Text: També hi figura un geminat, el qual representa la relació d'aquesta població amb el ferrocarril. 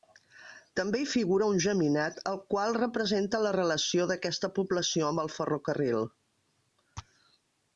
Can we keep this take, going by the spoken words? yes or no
yes